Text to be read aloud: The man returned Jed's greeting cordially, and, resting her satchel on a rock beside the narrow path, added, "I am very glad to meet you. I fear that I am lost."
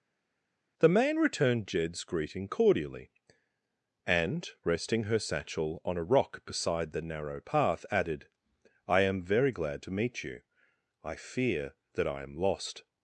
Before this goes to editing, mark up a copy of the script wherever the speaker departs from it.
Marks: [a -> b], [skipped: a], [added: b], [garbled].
The man returned Jed's greeting cordially, and, resting her satchel on a rock beside the narrow path, added, "I am very glad to meet you. I fear that I am lost."